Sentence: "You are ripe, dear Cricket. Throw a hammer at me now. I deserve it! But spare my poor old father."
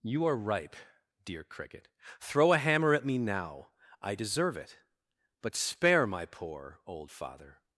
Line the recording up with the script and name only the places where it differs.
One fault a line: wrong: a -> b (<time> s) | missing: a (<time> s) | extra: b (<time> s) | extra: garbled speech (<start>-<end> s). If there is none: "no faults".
no faults